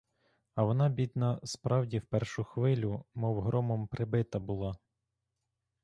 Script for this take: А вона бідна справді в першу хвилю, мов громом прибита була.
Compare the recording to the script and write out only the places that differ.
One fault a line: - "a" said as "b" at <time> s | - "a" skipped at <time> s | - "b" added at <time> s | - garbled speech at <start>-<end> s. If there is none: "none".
none